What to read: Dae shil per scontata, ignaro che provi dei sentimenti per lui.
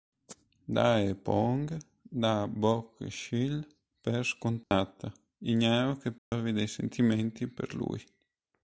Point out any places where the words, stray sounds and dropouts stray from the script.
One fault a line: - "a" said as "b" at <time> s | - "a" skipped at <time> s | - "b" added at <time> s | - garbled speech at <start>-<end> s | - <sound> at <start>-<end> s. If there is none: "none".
- "poong dà Bok" added at 1.1 s
- dropout at 4.6-4.7 s
- dropout at 6.2-6.3 s